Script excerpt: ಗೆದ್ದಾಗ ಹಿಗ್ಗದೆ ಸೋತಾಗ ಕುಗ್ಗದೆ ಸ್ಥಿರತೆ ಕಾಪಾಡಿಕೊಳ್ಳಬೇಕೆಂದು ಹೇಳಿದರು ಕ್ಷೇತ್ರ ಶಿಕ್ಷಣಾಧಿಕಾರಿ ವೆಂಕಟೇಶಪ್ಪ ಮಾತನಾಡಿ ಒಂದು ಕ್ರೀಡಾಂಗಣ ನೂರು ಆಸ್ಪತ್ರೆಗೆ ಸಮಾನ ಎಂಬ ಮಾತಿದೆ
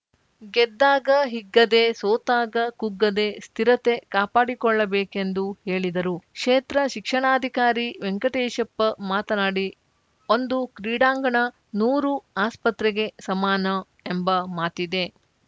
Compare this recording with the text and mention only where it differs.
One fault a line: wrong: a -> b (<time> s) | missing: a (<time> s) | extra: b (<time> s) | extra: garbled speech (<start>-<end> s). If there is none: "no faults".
no faults